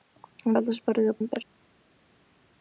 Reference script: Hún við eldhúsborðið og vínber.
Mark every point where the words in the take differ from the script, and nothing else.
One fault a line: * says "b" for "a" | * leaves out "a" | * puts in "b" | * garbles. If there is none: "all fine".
all fine